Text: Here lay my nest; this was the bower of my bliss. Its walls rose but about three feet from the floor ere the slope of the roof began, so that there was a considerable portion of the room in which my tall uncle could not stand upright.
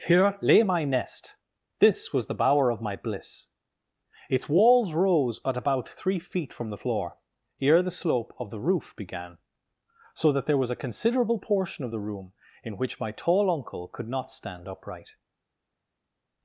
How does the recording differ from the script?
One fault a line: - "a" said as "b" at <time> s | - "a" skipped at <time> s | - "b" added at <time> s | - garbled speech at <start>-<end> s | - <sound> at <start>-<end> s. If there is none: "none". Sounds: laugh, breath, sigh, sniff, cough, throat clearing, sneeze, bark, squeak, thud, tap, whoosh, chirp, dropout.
- "but" said as "at" at 5.5 s